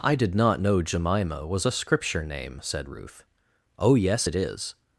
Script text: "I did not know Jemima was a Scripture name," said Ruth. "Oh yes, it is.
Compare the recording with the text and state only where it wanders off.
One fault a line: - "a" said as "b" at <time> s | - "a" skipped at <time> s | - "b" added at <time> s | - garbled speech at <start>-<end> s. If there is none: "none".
none